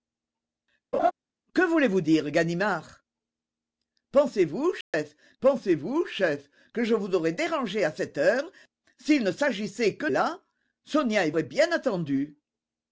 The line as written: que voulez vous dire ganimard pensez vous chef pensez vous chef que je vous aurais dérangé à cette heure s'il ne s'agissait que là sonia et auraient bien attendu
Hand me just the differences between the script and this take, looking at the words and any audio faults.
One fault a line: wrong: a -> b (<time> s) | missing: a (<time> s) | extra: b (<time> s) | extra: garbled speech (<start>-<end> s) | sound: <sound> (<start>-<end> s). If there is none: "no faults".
sound: laugh (0.9-1.1 s)
sound: dropout (4.8-4.9 s)